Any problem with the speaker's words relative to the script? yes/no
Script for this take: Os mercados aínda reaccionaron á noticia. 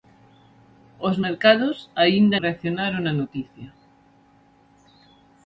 no